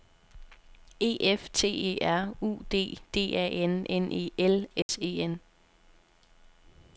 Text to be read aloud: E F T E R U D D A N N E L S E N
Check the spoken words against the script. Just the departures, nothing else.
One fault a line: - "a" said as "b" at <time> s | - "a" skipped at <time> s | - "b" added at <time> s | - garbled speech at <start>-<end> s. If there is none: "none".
none